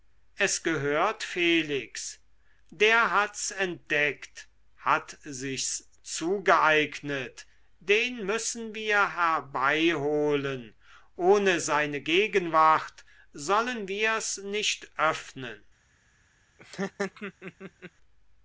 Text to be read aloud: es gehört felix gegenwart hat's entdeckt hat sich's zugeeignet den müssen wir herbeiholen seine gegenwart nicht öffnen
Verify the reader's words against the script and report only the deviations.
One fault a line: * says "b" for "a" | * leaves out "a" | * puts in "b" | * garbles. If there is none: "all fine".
* says "der" for "gegenwart"
* puts in "ohne"
* puts in "sollen wir's"